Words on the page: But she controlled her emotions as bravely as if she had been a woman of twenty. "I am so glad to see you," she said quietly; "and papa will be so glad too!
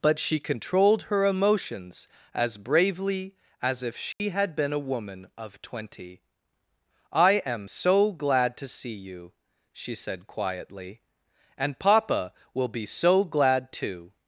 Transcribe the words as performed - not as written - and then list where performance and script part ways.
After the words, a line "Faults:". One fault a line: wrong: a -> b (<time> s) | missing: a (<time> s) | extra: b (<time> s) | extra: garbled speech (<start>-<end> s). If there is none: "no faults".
But she controlled her emotions as bravely as if she had been a woman of twenty. "I am so glad to see you," she said quietly; "and papa will be so glad too!
Faults:
no faults